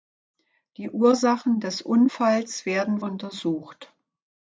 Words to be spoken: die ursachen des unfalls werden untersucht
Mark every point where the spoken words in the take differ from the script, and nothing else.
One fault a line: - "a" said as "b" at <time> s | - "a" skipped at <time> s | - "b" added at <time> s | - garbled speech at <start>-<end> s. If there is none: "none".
none